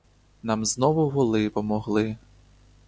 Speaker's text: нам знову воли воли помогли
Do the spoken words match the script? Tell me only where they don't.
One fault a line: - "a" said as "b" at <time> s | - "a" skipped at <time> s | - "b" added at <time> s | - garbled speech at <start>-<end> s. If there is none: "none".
- "воли" skipped at 1.5 s